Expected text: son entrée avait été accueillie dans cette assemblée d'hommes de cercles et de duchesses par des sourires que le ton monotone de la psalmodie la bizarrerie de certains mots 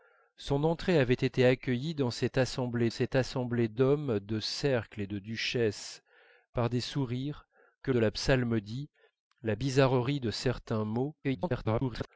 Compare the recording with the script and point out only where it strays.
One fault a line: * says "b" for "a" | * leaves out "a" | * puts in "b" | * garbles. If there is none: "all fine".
* puts in "cette assemblée"
* leaves out "le ton monotone"
* garbles